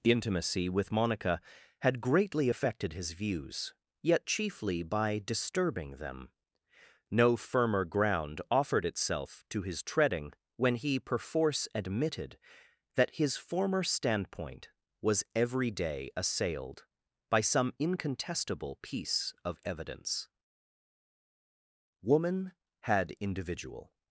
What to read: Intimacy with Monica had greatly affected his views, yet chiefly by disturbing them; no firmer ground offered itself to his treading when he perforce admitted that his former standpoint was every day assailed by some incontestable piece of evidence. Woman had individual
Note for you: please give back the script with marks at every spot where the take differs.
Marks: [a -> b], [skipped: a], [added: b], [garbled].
Intimacy with Monica had greatly affected his views, yet chiefly by disturbing them; no firmer ground offered itself to his treading when he perforce admitted that his former standpoint was every day assailed by some incontestable piece of evidence. Woman had individual